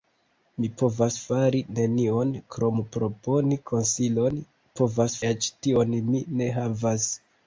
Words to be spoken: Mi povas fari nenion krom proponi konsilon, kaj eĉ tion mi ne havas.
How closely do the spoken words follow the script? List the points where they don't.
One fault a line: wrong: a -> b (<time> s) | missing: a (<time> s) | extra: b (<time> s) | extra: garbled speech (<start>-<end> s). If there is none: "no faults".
wrong: kaj -> povas (4.8 s)